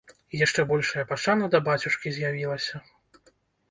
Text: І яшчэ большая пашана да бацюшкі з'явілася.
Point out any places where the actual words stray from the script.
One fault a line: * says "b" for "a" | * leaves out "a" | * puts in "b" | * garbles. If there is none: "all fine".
all fine